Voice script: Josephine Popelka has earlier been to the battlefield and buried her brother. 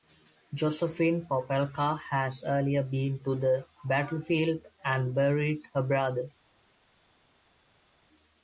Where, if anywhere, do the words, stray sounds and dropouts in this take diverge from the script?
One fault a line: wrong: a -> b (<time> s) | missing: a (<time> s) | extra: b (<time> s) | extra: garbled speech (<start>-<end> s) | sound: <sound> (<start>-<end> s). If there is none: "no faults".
no faults